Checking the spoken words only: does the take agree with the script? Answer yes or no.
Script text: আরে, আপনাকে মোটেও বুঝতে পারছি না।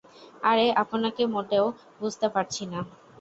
yes